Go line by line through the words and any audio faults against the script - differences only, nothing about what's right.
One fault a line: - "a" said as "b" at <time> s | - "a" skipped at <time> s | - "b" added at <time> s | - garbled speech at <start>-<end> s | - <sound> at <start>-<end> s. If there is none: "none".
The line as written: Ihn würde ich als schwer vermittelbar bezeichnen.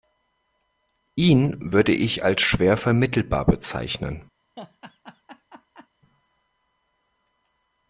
- laugh at 4.6-5.9 s